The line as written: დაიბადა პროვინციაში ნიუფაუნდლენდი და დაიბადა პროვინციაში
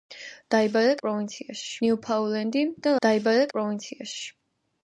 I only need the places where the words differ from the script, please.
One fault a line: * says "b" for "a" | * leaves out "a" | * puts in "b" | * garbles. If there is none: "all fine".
all fine